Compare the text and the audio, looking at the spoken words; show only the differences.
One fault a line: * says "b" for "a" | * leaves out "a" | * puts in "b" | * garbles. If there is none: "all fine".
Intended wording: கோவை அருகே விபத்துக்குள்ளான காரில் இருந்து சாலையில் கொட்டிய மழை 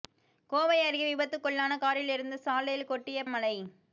all fine